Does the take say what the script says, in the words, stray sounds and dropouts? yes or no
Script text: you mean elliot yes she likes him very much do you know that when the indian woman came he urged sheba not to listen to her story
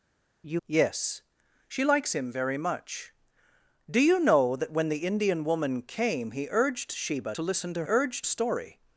no